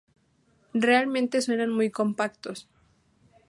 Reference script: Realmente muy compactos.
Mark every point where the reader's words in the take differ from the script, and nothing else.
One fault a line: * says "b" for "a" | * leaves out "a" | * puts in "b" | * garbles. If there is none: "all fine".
* puts in "suenan"